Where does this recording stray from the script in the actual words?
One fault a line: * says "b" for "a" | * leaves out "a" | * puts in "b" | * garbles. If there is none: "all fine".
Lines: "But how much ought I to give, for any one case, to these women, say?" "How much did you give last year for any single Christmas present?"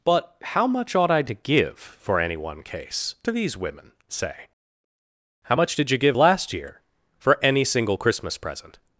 all fine